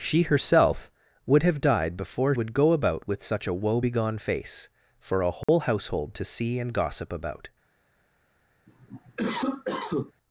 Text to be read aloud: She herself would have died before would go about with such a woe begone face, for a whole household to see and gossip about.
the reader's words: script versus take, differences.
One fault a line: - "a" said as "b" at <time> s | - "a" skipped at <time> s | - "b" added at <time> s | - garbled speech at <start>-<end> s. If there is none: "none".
none